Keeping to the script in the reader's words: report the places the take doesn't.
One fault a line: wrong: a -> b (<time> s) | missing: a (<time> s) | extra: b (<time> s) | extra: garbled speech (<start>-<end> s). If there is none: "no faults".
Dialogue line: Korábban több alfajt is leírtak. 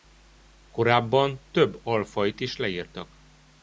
no faults